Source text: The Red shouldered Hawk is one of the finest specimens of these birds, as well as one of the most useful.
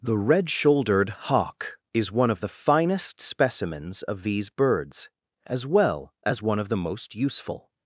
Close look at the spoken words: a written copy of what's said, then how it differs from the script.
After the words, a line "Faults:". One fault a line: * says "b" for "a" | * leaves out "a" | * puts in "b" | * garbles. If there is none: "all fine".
The Red shouldered Hawk is one of the finest specimens of these birds, as well as one of the most useful.
Faults:
all fine